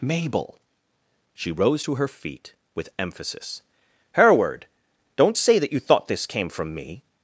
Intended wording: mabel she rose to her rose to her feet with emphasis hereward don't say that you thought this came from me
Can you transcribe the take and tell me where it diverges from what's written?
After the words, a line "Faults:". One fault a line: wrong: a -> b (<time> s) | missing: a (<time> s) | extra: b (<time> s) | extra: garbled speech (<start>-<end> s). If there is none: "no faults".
mabel she rose to her feet with emphasis hereward don't say that you thought this came from me
Faults:
missing: rose to her (2.1 s)